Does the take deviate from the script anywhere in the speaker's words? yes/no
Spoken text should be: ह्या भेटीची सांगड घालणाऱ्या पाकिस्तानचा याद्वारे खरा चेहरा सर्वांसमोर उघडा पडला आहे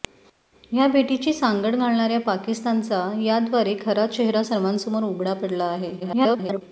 yes